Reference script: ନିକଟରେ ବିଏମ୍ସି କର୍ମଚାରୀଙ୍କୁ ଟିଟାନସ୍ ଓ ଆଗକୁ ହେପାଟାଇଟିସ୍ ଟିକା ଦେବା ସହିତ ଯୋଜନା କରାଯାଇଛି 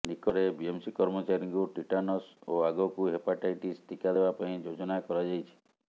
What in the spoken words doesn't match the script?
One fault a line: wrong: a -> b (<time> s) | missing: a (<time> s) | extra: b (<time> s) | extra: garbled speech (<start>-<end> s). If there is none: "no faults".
wrong: ସହିତ -> ପାଇଁ (4.4 s)